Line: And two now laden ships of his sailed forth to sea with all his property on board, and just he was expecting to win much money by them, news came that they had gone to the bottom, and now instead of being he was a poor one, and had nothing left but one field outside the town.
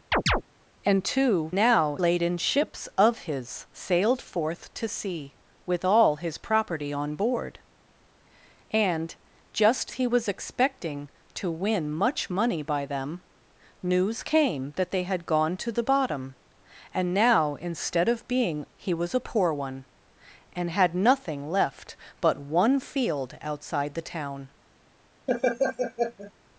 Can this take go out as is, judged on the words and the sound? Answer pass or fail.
fail